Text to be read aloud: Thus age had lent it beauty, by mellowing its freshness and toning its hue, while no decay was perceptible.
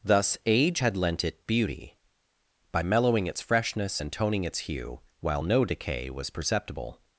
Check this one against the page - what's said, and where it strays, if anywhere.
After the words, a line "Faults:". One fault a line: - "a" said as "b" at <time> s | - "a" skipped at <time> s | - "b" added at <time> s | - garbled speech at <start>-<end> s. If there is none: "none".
Thus age had lent it beauty, by mellowing its freshness and toning its hue, while no decay was perceptible.
Faults:
none